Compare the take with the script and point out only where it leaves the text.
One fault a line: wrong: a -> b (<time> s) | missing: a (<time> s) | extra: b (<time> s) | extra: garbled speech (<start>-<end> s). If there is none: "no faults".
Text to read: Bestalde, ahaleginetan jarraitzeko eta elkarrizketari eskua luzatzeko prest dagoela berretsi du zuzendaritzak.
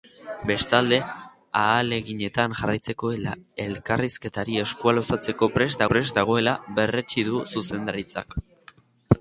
extra: prest (5.9 s)